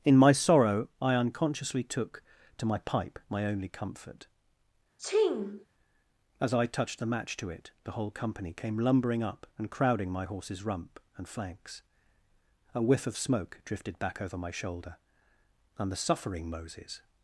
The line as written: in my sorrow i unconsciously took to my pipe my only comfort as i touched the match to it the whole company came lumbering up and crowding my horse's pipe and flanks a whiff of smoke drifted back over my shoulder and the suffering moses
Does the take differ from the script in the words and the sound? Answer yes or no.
yes